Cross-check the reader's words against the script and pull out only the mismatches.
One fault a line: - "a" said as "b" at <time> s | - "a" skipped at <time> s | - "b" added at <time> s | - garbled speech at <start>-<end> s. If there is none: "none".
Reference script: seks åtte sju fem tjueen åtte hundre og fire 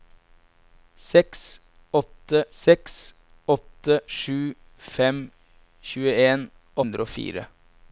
- "seks åtte" added at 2.6 s
- "åtte" skipped at 6.4 s